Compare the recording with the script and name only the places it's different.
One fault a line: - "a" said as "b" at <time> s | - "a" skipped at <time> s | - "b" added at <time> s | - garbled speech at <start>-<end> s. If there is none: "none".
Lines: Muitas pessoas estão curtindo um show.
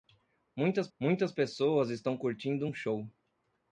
- "muitas" added at 1.0 s